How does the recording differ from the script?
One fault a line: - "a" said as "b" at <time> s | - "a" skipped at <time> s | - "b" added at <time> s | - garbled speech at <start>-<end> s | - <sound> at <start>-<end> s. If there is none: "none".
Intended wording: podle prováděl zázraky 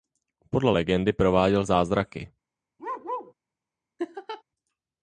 - "legendy" added at 0.7 s
- bark at 2.8-3.3 s
- laugh at 4.0-4.4 s